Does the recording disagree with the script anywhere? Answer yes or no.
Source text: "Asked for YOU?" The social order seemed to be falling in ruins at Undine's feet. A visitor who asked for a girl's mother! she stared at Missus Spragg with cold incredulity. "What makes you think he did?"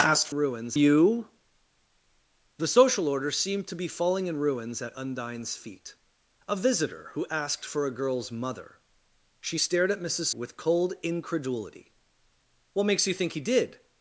yes